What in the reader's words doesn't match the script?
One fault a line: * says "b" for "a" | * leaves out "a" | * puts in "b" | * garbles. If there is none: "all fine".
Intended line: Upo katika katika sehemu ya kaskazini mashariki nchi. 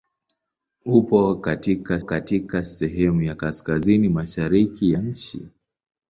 all fine